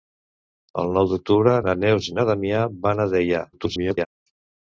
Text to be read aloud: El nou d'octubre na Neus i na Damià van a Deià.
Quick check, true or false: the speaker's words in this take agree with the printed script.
false